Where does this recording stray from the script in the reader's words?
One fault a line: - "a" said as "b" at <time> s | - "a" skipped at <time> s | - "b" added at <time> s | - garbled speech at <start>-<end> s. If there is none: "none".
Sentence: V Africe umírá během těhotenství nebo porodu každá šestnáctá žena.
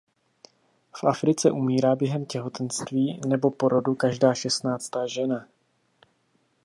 none